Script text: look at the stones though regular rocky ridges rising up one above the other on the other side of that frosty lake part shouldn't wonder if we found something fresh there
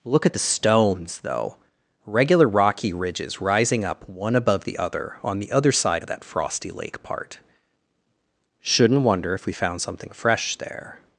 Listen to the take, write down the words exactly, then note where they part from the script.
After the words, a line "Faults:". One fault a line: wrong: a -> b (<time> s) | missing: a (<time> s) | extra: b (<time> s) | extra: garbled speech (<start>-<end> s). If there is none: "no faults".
look at the stones though regular rocky ridges rising up one above the other on the other side of that frosty lake part shouldn't wonder if we found something fresh there
Faults:
no faults